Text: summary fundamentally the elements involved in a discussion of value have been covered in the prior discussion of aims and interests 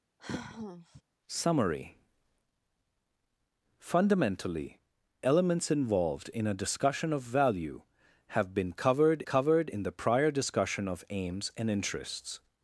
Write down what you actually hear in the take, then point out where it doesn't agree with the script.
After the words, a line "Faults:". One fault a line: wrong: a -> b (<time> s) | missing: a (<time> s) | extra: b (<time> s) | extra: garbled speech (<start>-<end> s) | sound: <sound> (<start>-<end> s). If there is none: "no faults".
summary fundamentally elements involved in a discussion of value have been covered covered in the prior discussion of aims and interests
Faults:
sound: sigh (0.2-1.0 s)
missing: the (4.8 s)
extra: covered (9.2 s)